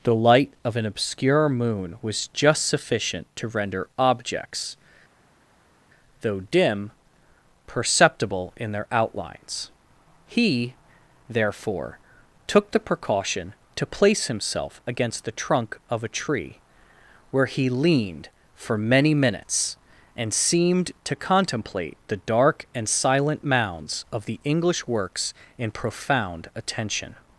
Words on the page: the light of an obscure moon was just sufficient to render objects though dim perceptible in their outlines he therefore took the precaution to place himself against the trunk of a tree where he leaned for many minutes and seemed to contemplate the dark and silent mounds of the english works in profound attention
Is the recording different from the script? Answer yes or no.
no